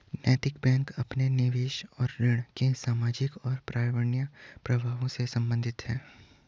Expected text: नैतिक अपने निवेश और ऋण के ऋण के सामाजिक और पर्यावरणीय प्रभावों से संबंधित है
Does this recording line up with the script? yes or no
no